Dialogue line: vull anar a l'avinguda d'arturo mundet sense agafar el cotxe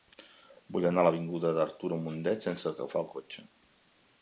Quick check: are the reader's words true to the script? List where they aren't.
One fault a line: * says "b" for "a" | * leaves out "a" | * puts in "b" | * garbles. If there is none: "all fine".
all fine